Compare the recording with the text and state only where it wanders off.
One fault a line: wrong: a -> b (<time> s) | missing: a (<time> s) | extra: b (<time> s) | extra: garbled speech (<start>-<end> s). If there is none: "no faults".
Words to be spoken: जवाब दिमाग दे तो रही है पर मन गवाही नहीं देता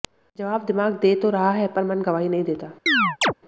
wrong: रही -> रहा (1.3 s)